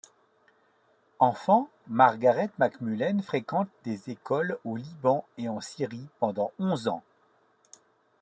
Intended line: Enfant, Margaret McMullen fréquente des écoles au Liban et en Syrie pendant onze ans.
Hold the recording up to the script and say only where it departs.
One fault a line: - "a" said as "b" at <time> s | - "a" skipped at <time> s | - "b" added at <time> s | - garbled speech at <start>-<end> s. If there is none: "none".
none